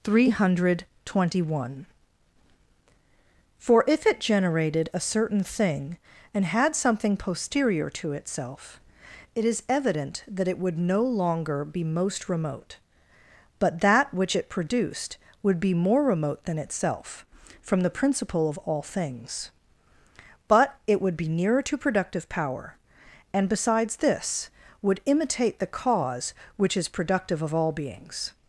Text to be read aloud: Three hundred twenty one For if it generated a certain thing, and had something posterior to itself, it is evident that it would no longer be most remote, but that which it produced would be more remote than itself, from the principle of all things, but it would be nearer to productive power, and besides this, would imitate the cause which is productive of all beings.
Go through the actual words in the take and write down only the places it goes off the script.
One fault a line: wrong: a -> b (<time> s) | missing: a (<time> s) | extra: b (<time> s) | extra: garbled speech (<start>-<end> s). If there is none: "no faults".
no faults